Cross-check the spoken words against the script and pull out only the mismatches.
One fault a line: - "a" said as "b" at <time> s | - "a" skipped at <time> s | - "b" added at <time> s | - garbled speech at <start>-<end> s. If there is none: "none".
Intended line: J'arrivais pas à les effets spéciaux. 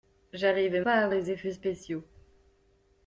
none